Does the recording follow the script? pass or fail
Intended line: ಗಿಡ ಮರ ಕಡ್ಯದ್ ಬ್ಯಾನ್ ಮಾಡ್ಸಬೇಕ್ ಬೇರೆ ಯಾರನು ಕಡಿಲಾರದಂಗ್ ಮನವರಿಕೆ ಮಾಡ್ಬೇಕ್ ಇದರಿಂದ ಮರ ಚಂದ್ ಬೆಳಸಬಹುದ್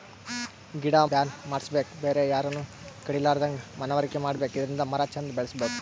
fail